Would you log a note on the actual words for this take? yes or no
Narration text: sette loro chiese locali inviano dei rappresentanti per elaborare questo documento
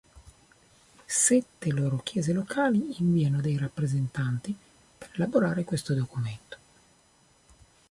no